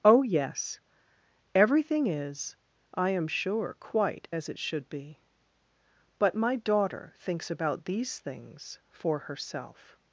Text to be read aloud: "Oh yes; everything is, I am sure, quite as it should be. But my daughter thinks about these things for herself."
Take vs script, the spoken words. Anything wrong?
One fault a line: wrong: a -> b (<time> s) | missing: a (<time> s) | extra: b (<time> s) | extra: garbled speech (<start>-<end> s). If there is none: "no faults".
no faults